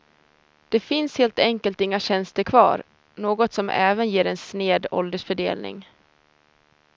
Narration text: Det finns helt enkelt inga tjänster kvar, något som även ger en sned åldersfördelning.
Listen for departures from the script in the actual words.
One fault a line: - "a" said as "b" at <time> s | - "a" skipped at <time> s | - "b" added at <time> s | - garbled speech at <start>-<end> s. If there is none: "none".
none